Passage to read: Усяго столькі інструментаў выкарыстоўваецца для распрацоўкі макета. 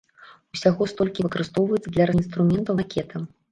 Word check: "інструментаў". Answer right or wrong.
wrong